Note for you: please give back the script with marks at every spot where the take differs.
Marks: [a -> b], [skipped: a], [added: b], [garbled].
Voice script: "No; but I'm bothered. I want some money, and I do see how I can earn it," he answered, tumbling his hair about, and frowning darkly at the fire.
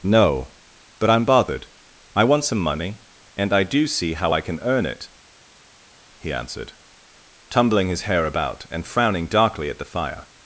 "No; but I'm bothered. I want some money, and I do see how I can earn it," he answered, tumbling his hair about, and frowning darkly at the fire.